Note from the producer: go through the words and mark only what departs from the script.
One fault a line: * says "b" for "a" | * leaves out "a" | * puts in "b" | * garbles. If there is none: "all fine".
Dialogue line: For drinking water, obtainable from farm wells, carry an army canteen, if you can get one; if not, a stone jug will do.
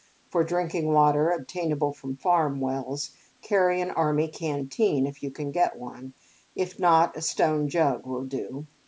all fine